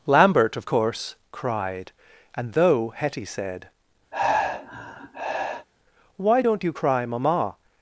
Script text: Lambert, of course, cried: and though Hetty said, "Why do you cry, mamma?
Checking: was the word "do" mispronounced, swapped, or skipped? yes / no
yes